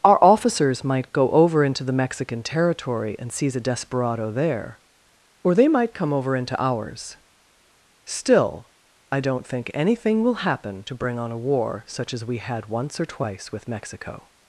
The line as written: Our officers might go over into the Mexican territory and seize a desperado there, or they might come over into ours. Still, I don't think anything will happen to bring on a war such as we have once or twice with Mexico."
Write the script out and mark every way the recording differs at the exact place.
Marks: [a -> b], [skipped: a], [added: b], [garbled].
Our officers might go over into the Mexican territory and seize a desperado there, or they might come over into ours. Still, I don't think anything will happen to bring on a war such as we [have -> had] once or twice with Mexico."